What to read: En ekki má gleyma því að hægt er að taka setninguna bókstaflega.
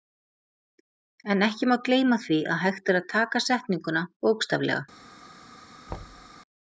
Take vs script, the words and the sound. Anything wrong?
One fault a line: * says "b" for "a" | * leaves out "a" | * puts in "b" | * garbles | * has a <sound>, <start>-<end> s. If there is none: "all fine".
* has a thud, 5.9-6.3 s